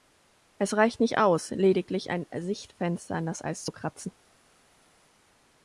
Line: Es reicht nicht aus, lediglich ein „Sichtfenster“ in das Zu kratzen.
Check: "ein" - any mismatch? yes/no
no